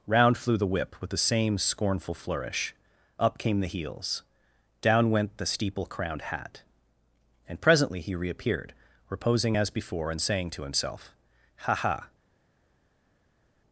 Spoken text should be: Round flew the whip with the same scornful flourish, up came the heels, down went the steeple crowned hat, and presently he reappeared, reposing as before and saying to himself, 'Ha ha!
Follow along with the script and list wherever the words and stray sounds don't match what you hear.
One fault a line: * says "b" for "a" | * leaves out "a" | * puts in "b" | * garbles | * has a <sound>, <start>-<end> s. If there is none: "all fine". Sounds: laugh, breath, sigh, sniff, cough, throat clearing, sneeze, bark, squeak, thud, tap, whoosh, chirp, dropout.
all fine